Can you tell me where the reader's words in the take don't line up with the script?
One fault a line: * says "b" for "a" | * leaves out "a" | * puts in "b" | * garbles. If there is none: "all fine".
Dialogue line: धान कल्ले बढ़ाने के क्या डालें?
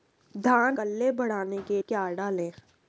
all fine